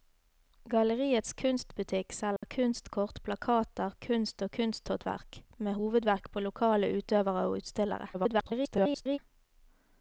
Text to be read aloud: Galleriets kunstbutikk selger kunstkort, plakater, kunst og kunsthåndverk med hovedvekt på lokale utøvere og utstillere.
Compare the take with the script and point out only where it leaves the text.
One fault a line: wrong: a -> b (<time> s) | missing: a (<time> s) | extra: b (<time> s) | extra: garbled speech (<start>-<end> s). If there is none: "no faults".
extra: garbled speech (8.1-9.2 s)